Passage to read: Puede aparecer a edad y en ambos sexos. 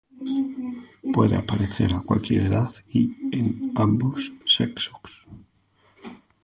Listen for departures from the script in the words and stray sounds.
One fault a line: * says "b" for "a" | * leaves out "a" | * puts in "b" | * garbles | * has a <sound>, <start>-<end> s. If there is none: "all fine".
* puts in "cualquier"